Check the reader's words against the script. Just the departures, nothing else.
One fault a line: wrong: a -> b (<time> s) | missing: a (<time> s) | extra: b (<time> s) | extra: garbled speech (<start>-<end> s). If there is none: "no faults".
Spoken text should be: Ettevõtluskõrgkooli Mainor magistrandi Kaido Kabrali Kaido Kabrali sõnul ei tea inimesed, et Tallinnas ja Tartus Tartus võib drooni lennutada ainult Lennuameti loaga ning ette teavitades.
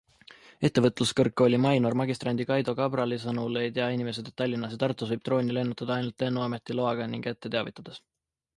missing: Kaido Kabrali (3.2 s)
missing: Tartus (5.1 s)